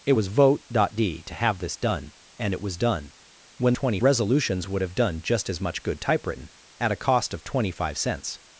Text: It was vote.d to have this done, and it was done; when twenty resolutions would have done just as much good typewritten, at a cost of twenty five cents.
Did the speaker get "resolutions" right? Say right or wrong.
right